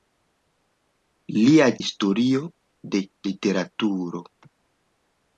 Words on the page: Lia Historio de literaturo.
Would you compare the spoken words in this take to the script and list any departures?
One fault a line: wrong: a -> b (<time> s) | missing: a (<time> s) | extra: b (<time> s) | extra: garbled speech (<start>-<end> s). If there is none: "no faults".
no faults